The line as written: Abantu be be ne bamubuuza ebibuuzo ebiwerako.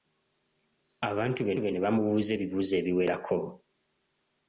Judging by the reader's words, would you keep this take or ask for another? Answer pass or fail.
pass